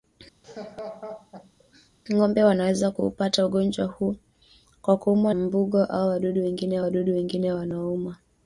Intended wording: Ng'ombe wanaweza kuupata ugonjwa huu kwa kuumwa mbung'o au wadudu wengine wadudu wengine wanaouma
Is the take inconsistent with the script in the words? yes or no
no